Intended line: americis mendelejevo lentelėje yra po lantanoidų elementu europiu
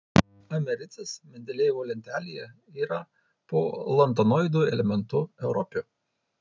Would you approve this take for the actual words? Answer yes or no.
yes